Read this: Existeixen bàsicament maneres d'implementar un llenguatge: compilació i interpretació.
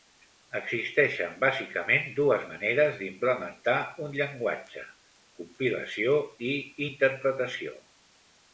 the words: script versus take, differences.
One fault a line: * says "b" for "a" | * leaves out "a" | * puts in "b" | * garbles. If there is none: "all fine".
* puts in "dues"